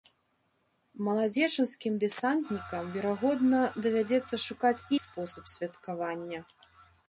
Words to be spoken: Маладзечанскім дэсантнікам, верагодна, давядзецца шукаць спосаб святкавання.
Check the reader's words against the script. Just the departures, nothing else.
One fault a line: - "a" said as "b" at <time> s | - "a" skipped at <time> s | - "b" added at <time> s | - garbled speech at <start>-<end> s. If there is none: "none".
none